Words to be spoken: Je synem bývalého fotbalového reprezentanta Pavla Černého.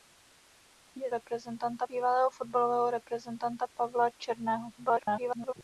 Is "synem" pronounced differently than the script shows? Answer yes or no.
yes